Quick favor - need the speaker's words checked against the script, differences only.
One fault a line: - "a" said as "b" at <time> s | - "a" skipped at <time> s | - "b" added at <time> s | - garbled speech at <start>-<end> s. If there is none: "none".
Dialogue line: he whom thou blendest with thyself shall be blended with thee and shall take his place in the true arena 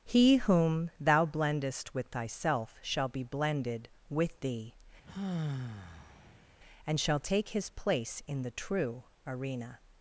none